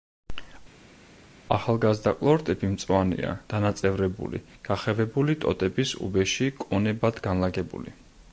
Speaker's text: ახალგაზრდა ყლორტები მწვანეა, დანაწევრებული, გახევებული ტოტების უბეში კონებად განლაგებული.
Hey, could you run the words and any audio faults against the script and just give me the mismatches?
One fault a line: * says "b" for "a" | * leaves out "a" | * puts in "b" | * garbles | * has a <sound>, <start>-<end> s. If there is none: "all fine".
all fine